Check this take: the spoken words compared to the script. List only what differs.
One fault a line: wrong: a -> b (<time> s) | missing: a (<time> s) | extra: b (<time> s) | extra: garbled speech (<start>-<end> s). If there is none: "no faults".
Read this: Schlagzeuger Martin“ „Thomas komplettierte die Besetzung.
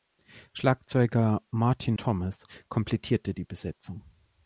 no faults